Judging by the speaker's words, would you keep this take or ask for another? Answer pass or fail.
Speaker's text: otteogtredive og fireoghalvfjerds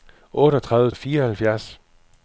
pass